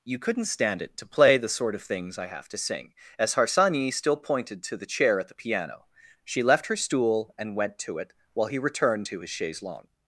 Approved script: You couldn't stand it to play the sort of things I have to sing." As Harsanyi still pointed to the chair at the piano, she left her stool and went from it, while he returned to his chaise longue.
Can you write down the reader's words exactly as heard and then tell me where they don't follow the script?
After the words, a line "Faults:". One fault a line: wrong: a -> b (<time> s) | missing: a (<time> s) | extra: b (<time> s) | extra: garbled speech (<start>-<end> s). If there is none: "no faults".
You couldn't stand it to play the sort of things I have to sing." As Harsanyi still pointed to the chair at the piano, she left her stool and went to it, while he returned to his chaise longue.
Faults:
wrong: from -> to (7.8 s)